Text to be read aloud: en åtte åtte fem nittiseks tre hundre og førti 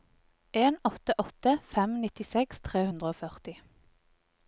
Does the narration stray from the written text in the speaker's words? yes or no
no